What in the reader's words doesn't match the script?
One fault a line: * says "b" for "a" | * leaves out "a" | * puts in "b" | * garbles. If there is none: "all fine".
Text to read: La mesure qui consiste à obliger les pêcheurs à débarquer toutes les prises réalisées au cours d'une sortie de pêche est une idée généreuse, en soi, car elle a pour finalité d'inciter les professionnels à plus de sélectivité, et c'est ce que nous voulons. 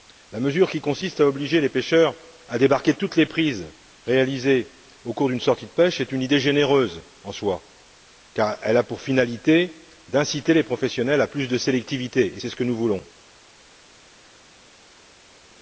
all fine